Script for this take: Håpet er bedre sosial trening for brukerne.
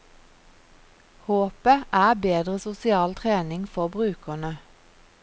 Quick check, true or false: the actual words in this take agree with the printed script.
true